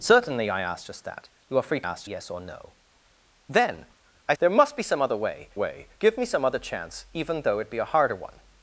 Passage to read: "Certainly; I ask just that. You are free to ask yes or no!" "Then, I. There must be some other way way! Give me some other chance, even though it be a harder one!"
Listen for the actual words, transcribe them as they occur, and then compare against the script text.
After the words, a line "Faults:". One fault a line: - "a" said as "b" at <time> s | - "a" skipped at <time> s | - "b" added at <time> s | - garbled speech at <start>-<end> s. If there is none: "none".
"Certainly; I ask just that. You are free to ask yes or no!" "Then, I. There must be some other way way! Give me some other chance, even though it be a harder one!"
Faults:
none